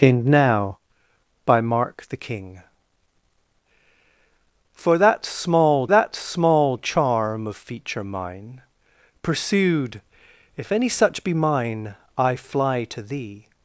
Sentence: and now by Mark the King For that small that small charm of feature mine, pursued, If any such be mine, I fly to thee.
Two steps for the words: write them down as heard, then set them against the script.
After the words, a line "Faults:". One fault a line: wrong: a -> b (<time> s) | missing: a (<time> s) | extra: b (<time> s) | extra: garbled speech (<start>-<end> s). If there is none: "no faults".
and now by Mark the King For that small that small charm of feature mine, pursued, If any such be mine, I fly to thee.
Faults:
no faults